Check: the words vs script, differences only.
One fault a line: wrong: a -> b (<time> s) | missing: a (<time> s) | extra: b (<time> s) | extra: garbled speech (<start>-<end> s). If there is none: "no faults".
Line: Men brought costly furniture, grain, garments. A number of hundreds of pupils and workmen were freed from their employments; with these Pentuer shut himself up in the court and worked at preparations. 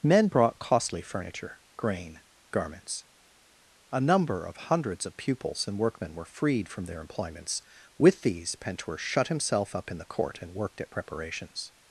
no faults